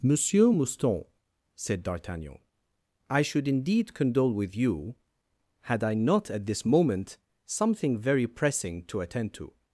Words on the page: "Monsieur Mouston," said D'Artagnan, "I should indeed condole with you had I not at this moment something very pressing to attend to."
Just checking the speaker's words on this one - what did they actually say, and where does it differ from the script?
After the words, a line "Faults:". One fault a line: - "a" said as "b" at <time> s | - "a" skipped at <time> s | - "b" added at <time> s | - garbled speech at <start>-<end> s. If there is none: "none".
"Monsieur Mouston," said D'Artagnan, "I should indeed condole with you had I not at this moment something very pressing to attend to."
Faults:
none